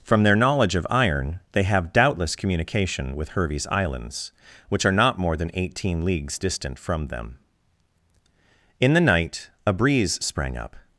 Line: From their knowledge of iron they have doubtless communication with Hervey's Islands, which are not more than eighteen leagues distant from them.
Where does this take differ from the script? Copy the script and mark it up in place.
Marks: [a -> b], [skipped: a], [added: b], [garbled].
From their knowledge of iron they have doubtless communication with Hervey's Islands, which are not more than eighteen leagues distant from them. [added: In the night a breeze sprang up]